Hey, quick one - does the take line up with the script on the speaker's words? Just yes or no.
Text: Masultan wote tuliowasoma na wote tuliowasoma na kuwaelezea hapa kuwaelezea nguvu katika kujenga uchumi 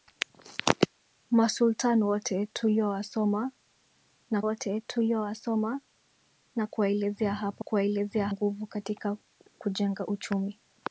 yes